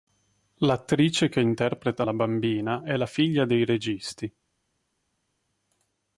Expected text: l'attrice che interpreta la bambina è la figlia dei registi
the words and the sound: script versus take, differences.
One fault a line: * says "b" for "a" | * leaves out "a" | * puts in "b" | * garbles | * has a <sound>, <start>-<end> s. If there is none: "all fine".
all fine